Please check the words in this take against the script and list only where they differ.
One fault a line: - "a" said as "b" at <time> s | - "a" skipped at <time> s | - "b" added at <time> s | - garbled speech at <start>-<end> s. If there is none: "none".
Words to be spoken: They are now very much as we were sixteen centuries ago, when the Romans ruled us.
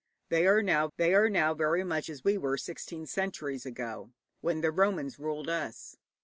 - "they are now" added at 1.0 s